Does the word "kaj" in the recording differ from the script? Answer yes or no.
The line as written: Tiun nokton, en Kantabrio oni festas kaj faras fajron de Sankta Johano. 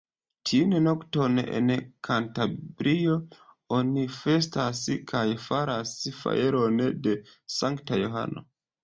no